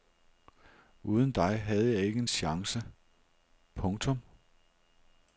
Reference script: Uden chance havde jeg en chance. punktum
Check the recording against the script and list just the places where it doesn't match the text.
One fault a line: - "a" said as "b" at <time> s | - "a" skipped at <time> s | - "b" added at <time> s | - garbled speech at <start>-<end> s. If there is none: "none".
- "chance" said as "dig" at 1.3 s
- "ikke" added at 2.0 s